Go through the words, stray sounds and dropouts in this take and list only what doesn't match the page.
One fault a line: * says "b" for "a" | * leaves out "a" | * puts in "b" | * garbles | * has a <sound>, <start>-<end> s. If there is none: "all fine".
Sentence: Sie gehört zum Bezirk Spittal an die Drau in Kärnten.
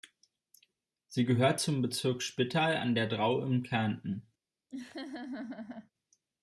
* says "der" for "die"
* has a laugh, 4.7-5.9 s